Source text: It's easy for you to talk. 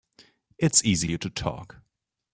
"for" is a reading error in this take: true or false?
true